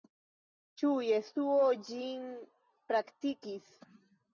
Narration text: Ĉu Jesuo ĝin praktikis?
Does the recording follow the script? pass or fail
pass